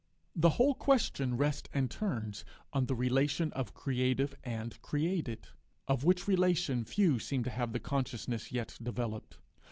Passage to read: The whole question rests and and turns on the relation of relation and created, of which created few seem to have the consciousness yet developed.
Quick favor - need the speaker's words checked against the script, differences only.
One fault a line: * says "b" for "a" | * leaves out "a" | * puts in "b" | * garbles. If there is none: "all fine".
* leaves out "and"
* says "creative" for "relation"
* says "relation" for "created"